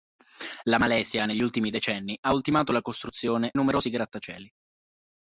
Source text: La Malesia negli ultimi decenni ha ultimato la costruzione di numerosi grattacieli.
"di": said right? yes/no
no